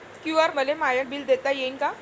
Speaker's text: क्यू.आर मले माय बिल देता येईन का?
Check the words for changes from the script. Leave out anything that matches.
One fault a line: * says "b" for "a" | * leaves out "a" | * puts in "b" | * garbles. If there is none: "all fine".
all fine